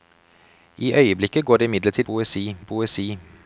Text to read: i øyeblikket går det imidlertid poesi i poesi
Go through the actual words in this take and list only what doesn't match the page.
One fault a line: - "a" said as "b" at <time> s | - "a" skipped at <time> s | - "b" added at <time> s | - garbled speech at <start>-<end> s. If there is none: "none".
none